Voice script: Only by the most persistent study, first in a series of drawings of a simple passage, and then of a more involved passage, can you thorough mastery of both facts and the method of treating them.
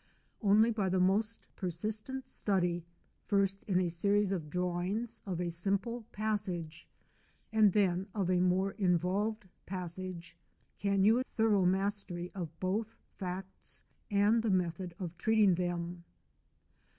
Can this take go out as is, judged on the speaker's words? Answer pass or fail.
pass